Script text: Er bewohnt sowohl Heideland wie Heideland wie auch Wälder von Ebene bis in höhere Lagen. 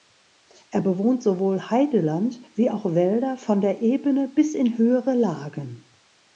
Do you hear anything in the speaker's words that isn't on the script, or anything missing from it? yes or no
yes